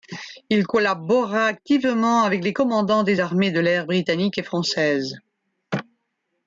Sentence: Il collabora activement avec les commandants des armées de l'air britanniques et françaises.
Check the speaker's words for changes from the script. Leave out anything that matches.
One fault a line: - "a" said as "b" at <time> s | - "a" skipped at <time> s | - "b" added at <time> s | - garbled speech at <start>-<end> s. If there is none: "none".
none